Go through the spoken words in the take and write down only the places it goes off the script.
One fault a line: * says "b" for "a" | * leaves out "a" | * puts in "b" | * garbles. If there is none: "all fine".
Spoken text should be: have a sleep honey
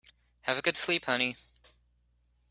* puts in "good"